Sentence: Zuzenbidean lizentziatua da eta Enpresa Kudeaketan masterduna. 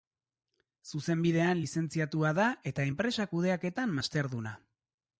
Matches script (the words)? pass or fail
pass